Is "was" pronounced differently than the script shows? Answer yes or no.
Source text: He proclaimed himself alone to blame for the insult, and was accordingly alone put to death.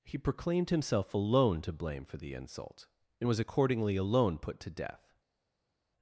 no